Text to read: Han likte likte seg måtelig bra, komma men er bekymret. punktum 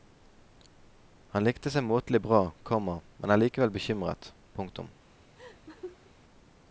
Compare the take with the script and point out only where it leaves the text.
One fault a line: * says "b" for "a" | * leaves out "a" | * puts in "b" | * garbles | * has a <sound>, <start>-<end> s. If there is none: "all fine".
* leaves out "likte"
* puts in "likevel"
* has a laugh, 5.4-6.1 s